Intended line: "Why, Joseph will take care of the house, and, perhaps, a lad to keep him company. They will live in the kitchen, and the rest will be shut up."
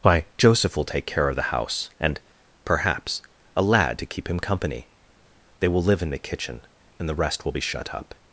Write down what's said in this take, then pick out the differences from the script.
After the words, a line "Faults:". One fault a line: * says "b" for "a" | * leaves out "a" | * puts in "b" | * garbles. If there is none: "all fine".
"Why, Joseph will take care of the house, and, perhaps, a lad to keep him company. They will live in the kitchen, and the rest will be shut up."
Faults:
all fine